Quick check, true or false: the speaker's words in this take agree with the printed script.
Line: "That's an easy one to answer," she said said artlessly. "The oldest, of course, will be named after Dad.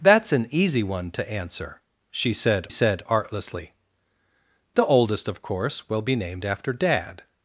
true